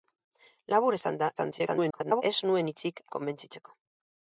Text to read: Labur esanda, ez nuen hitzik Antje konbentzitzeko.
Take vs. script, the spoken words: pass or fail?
fail